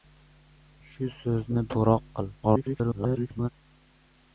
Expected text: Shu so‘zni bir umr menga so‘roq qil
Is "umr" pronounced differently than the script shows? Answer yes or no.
yes